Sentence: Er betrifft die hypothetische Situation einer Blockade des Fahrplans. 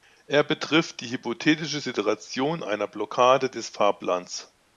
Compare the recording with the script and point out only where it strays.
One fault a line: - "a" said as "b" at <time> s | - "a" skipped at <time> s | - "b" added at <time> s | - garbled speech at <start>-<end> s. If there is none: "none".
none